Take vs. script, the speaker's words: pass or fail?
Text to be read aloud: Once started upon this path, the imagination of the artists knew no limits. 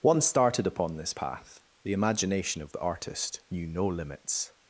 fail